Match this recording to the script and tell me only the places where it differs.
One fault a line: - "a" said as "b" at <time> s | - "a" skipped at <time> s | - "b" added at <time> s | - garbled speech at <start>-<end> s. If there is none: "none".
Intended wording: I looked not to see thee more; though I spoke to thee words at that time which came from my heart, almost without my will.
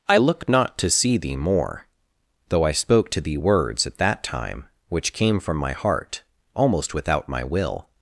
- "looked" said as "look" at 0.2 s